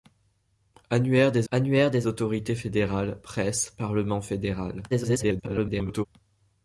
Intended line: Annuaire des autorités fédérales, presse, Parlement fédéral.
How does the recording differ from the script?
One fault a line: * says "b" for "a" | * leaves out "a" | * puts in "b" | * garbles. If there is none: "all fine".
* puts in "annuaire des"
* garbles